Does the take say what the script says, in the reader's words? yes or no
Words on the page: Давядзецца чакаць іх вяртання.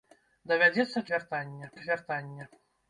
no